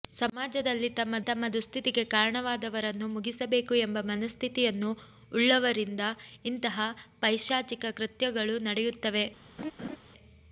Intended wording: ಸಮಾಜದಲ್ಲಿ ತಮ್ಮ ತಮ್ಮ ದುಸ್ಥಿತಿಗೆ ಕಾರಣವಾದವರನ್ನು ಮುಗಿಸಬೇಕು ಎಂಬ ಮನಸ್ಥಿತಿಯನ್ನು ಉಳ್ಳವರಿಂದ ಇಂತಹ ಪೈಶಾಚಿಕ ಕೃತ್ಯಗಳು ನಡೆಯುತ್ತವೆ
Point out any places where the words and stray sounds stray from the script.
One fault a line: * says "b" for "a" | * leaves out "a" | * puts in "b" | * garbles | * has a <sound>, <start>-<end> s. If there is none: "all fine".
* has a laugh, 9.6-10.0 s